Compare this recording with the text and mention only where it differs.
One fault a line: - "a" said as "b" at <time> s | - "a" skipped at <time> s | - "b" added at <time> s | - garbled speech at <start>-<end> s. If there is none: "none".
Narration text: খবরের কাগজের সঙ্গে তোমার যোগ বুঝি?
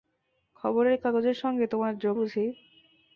none